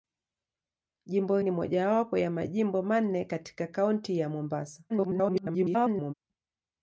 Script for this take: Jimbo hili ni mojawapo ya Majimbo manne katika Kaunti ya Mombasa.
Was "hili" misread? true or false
true